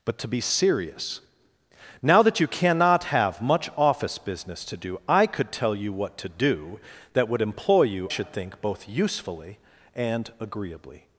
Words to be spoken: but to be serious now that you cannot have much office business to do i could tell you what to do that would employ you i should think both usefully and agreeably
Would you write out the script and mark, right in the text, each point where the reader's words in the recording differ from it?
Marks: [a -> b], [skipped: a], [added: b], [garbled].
but to be serious now that you cannot have much office business to do i could tell you what to do that would employ you [skipped: i] should think both usefully and agreeably